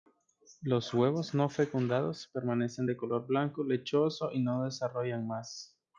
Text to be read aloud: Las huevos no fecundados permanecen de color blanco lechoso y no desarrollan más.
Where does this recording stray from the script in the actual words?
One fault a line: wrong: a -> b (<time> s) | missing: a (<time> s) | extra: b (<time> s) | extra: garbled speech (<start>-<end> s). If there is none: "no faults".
wrong: Las -> Los (0.6 s)